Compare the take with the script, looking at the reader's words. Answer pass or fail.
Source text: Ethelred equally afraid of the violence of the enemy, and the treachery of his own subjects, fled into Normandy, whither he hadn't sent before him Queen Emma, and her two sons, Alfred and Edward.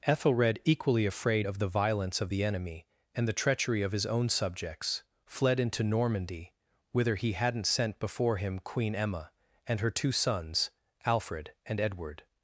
pass